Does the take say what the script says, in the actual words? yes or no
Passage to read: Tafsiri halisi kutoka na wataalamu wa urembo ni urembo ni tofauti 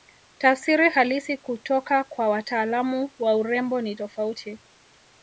no